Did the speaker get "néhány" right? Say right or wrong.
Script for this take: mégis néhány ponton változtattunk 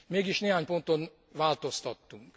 right